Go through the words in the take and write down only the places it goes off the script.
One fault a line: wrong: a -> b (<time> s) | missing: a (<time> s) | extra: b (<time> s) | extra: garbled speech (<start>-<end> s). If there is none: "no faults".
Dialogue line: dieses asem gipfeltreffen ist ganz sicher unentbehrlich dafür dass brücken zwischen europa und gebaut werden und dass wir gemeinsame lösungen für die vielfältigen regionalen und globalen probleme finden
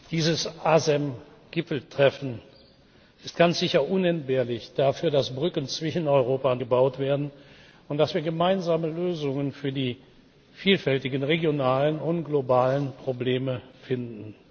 no faults